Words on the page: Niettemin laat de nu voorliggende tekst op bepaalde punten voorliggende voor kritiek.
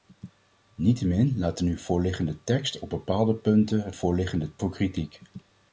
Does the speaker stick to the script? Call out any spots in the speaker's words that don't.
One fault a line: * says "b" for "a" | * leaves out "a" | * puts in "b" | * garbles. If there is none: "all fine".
all fine